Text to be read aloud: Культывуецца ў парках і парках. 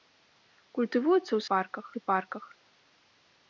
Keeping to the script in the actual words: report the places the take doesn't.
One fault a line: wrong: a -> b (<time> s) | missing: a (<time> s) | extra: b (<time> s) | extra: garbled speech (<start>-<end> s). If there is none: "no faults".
no faults